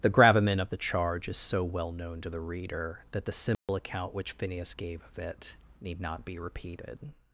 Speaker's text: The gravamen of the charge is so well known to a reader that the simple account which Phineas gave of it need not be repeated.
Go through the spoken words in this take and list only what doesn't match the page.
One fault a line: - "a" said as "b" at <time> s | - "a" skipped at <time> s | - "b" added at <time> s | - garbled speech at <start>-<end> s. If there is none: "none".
- "a" said as "the" at 2.3 s